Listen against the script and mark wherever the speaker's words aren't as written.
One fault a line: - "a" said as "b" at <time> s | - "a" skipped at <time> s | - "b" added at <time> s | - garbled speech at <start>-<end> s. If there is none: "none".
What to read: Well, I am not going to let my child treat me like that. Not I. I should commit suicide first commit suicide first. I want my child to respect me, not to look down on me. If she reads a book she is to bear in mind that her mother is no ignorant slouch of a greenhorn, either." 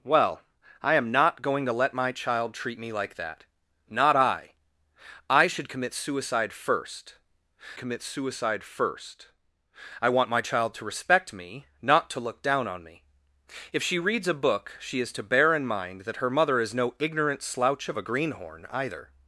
none